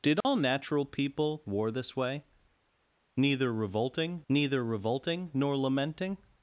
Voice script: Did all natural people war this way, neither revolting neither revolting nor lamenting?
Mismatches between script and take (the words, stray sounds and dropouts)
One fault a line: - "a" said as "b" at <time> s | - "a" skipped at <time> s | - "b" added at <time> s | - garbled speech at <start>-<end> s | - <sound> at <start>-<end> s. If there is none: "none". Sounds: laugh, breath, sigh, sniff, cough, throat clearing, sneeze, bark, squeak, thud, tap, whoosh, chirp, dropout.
- dropout at 0.2-0.2 s